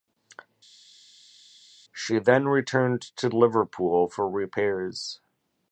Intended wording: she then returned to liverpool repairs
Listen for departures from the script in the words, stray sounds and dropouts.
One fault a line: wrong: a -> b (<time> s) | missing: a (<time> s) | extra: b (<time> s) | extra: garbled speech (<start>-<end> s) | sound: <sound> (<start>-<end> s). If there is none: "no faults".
extra: for (4.1 s)